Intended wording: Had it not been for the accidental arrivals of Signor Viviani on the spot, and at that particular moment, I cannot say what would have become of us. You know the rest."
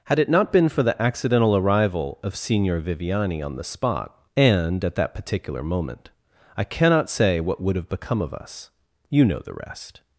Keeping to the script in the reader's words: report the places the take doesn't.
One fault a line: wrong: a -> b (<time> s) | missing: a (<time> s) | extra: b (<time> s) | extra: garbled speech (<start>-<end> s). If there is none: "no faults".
wrong: arrivals -> arrival (1.6 s)